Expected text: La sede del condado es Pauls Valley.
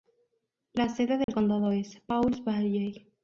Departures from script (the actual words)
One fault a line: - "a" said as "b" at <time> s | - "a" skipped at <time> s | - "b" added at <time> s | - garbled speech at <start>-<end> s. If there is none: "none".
none